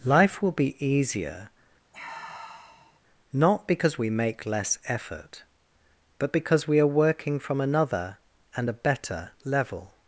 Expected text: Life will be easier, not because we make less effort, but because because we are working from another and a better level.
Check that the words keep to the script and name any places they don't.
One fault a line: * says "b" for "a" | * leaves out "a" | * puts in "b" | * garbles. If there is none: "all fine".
* leaves out "because"